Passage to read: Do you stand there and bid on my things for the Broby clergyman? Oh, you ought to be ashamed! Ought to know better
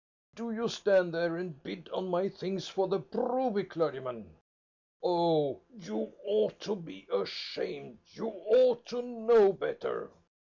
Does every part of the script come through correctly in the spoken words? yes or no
no